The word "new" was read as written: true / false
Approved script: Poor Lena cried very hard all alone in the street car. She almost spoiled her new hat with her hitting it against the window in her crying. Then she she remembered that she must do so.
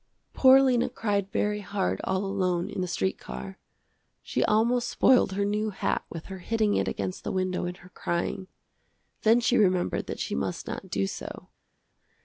true